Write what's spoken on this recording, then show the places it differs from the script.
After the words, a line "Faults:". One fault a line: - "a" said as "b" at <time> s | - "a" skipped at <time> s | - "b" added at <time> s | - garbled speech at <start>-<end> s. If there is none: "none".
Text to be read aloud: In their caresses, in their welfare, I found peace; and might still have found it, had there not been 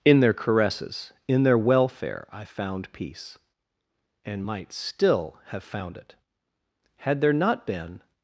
In their caresses, in their welfare, I found peace; and might still have found it, had there not been
Faults:
none